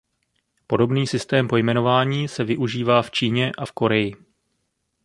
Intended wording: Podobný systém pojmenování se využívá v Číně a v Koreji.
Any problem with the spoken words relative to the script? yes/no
no